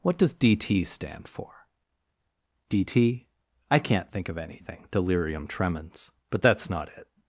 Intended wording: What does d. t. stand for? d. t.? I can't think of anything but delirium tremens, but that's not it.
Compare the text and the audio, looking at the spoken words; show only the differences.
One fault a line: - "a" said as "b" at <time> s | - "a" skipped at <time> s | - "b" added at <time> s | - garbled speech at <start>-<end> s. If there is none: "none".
- "but" skipped at 4.9 s